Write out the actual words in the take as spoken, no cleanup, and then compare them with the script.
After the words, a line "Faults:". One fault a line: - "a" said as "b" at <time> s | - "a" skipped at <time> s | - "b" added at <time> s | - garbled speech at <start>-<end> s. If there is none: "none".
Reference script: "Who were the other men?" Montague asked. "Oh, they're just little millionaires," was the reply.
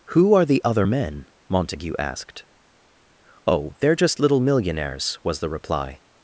"Who are the other men?" Montague asked. "Oh, they're just little millionaires," was the reply.
Faults:
- "were" said as "are" at 0.3 s